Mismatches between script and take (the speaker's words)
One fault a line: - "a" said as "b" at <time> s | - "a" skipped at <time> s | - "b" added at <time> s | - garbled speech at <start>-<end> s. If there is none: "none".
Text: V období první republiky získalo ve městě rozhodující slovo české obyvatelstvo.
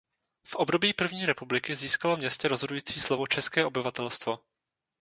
- "ve" skipped at 2.1 s